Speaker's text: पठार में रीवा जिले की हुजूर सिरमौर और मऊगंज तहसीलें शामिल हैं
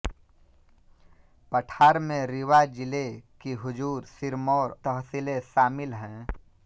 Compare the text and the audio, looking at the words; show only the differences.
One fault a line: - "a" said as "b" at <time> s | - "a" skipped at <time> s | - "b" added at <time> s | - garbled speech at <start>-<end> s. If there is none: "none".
- "और मऊगंज" skipped at 4.8 s